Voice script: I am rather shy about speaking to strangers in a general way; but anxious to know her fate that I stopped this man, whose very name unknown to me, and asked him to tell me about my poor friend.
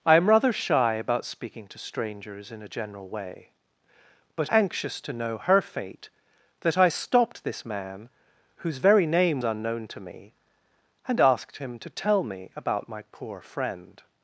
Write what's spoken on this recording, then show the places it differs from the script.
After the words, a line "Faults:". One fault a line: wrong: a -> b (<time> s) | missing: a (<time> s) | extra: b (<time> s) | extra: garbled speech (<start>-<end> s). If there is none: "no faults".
I am rather shy about speaking to strangers in a general way; but anxious to know her fate that I stopped this man, whose very name unknown to me, and asked him to tell me about my poor friend.
Faults:
no faults